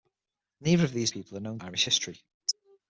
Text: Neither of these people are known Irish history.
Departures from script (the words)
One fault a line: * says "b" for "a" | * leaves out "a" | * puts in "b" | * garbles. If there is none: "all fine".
all fine